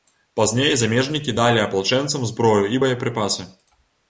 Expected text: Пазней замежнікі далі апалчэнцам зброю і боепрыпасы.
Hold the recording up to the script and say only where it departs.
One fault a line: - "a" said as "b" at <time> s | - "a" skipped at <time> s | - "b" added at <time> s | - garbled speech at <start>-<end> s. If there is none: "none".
none